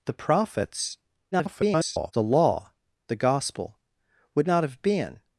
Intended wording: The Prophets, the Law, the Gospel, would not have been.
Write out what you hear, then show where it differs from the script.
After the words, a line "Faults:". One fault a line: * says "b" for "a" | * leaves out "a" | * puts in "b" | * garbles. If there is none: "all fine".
The Prophets, [garbled] the Law, the Gospel, would not have been.
Faults:
* garbles